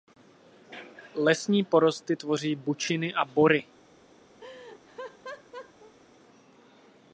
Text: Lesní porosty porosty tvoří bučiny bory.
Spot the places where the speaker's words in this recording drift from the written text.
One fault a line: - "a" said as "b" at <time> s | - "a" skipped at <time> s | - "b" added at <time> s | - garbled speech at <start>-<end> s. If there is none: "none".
- "porosty" skipped at 2.1 s
- "a" added at 3.1 s